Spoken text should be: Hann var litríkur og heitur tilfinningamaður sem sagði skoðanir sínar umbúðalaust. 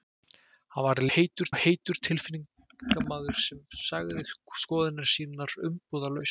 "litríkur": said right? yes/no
no